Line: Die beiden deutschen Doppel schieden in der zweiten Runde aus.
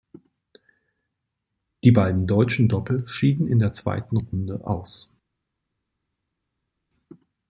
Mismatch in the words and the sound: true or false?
false